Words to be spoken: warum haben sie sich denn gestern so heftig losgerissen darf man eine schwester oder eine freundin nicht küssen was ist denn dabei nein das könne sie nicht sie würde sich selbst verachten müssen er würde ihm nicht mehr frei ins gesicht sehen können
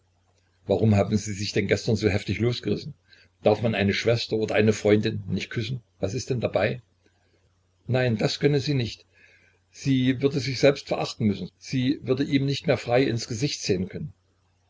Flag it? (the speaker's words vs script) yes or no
yes